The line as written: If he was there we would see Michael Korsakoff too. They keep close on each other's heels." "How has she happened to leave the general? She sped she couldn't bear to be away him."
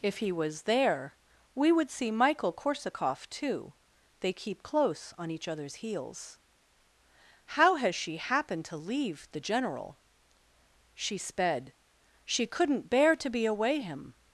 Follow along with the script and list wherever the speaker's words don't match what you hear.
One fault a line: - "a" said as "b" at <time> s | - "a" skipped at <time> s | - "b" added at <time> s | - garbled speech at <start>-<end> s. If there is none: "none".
none